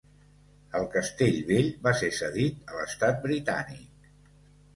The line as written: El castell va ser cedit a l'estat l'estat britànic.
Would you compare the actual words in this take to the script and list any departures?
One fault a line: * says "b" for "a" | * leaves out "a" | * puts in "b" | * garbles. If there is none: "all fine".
* puts in "vell"
* leaves out "l'estat"